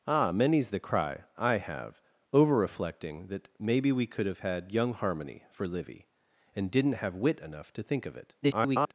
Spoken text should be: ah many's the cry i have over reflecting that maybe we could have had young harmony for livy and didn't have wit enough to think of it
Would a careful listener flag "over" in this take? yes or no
no